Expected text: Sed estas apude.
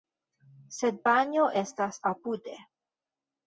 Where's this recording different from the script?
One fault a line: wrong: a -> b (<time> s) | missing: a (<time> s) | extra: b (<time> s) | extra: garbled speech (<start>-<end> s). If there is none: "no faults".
extra: panjo (1.1 s)